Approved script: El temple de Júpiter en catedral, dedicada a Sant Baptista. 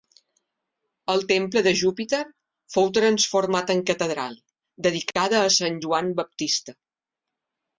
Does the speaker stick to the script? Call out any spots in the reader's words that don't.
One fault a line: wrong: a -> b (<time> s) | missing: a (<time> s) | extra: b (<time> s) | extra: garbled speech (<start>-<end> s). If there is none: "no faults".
extra: fou transformat (2.8 s)
extra: Joan (5.9 s)